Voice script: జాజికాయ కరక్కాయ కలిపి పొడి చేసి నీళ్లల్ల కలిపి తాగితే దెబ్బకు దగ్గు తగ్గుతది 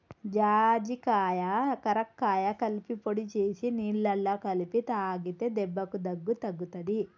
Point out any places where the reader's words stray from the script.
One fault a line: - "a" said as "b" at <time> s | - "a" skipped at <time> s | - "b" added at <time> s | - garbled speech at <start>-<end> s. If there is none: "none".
none